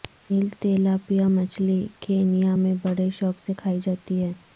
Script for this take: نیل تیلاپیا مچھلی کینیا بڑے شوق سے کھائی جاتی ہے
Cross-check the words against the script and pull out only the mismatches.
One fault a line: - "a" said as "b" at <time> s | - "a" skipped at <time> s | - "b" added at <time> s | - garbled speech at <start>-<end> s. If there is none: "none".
- "میں" added at 2.5 s